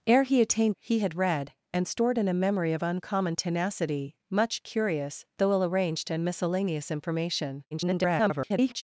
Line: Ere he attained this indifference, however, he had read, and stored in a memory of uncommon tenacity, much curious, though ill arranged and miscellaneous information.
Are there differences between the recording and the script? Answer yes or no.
yes